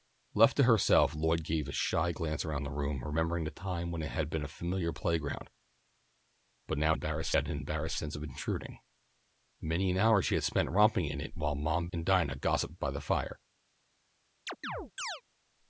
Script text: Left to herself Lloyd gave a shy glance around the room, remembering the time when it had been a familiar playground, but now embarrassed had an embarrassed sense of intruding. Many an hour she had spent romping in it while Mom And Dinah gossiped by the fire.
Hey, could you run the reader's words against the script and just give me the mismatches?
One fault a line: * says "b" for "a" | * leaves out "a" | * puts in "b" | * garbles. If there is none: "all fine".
all fine